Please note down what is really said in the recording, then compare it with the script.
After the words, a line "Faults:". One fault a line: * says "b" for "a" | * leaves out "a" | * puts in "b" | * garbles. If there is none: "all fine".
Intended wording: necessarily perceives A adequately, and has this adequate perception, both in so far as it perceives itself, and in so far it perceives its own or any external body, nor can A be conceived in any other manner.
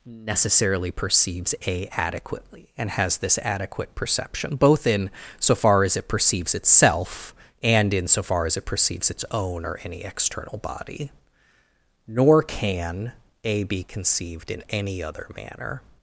necessarily perceives A adequately, and has this adequate perception, both in so far as it perceives itself, and in so far as it perceives its own or any external body, nor can A be conceived in any other manner.
Faults:
* puts in "as"